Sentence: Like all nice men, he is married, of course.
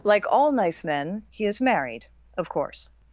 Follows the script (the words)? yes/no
yes